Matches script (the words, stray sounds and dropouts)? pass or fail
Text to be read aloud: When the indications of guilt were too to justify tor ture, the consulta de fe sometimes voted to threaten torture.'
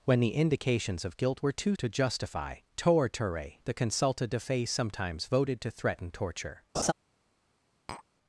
fail